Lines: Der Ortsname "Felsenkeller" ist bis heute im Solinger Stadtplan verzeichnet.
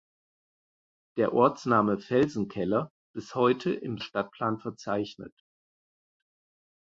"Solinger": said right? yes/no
no